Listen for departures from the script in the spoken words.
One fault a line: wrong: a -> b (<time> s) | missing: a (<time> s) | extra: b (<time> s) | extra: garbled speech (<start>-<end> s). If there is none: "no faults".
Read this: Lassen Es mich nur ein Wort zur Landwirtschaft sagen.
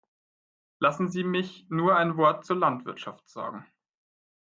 wrong: Es -> Sie (1.1 s)